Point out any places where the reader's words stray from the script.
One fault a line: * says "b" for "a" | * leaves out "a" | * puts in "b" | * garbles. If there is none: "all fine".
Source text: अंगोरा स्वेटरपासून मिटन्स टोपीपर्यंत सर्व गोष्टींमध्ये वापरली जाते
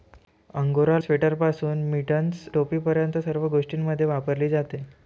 all fine